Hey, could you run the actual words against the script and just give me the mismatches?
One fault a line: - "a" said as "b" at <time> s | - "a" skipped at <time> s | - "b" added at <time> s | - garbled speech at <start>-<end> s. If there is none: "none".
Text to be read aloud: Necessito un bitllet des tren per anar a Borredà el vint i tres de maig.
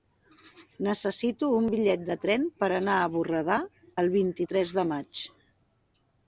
- "des" said as "de" at 2.1 s